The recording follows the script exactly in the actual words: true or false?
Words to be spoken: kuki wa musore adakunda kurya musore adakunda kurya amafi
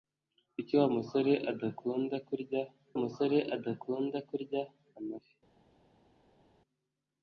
true